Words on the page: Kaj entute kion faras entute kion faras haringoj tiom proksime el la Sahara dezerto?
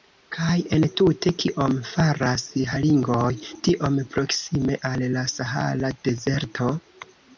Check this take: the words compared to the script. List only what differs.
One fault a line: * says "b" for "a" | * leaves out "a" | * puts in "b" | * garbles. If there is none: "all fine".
* leaves out "entute kion faras"
* says "al" for "el"